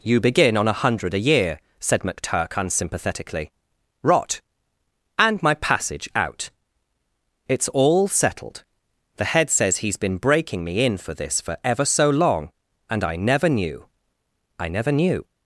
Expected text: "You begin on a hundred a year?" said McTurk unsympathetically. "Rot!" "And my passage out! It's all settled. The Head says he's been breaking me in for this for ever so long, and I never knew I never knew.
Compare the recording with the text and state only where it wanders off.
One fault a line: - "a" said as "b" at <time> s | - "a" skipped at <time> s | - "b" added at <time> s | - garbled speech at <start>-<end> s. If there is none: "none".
none